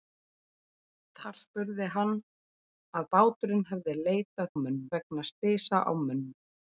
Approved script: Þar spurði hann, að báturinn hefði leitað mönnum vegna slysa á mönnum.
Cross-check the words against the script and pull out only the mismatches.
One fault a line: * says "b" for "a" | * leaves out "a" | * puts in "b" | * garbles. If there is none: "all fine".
all fine